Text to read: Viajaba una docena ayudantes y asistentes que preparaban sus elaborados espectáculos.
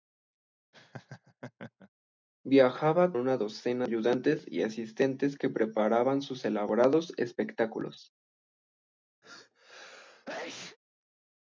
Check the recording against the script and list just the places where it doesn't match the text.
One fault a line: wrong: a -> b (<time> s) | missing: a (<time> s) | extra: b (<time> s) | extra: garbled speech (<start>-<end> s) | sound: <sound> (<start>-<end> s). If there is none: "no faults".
sound: laugh (0.7-1.9 s)
sound: sneeze (9.2-10.8 s)